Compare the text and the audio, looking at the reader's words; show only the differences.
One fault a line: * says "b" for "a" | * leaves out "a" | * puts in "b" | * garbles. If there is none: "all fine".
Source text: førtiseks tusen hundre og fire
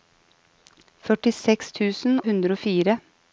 all fine